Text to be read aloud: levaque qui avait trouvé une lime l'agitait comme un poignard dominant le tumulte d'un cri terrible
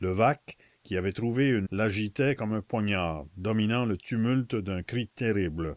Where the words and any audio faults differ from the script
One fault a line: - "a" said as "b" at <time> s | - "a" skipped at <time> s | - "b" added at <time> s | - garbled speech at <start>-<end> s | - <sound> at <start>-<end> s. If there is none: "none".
- "lime" skipped at 1.7 s